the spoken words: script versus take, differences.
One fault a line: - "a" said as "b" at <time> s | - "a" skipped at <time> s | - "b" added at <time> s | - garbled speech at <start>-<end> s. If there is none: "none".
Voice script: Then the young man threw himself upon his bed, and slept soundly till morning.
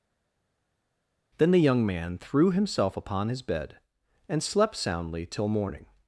none